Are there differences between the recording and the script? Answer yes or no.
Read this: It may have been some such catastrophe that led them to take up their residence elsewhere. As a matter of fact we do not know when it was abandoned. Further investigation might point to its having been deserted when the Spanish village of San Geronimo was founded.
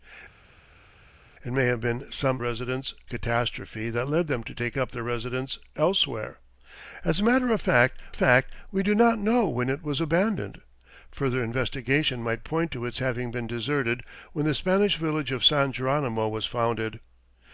yes